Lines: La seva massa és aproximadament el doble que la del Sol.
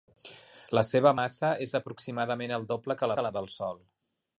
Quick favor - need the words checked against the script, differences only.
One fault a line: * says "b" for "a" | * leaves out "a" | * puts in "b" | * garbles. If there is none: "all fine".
* puts in "que"